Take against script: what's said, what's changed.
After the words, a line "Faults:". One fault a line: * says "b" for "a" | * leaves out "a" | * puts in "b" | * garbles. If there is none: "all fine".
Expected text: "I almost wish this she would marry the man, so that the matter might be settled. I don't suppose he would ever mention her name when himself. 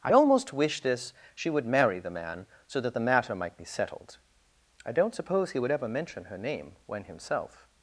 "I almost wish this she would marry the man, so that the matter might be settled. I don't suppose he would ever mention her name when himself.
Faults:
all fine